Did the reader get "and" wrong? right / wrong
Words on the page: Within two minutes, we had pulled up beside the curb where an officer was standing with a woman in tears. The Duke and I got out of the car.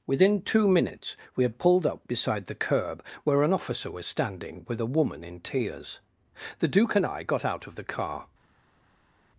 right